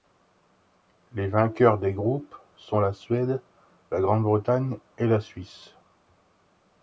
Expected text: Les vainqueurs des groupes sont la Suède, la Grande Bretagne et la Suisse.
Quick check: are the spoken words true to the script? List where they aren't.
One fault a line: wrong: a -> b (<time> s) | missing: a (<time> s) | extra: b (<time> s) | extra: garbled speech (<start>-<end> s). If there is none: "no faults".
no faults